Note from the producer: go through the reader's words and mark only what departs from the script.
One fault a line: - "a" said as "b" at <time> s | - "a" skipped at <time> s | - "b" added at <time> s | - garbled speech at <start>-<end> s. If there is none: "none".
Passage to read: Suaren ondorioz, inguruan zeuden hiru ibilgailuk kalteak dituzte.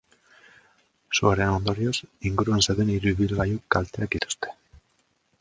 none